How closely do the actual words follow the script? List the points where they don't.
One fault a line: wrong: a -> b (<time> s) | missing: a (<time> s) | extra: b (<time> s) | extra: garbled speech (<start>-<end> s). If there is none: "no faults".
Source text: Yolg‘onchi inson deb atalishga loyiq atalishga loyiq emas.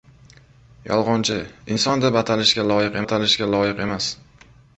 no faults